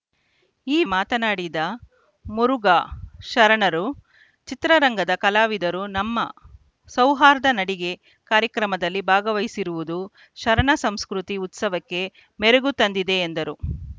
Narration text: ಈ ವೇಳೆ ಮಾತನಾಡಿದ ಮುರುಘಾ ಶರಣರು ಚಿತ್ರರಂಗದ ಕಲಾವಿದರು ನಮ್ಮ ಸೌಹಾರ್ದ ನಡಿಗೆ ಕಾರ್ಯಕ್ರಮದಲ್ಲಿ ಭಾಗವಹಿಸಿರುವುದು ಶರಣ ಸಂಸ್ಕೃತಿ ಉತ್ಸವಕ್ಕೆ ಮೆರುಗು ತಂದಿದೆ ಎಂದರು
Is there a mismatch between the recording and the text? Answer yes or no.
yes